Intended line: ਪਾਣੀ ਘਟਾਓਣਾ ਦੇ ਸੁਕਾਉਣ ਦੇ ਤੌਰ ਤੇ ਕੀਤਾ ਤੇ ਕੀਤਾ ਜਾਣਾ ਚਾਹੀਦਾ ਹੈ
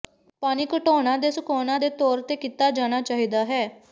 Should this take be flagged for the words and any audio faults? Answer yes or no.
yes